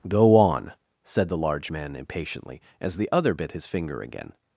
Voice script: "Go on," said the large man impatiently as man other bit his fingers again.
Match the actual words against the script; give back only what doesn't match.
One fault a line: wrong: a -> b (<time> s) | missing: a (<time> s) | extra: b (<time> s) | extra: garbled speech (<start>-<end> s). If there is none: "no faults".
wrong: man -> the (3.0 s)
wrong: fingers -> finger (3.7 s)